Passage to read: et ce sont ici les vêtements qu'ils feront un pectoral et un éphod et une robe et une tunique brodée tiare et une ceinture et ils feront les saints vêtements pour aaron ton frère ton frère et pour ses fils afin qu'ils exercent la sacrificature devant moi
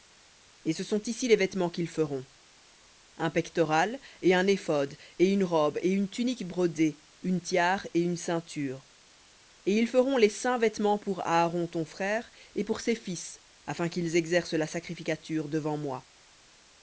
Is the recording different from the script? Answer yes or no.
yes